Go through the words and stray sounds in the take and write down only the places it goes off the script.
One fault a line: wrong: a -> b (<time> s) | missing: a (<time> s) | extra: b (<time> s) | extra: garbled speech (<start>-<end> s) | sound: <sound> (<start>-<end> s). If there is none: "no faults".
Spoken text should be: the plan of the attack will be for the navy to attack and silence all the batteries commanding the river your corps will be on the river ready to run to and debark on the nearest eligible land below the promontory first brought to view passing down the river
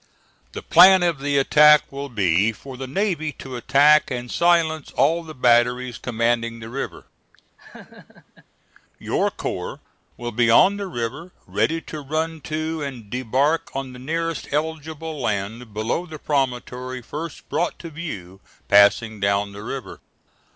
sound: laugh (7.6-8.5 s)